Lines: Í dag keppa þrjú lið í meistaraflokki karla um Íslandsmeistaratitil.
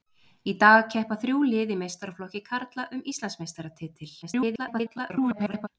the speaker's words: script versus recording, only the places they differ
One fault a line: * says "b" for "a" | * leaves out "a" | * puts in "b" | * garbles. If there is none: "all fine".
* garbles